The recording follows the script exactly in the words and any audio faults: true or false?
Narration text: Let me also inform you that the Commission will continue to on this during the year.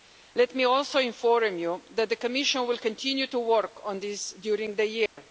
false